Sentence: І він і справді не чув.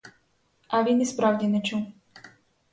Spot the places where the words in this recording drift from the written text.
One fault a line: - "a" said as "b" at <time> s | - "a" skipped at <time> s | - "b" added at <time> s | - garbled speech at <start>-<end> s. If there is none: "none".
- "І" said as "А" at 0.7 s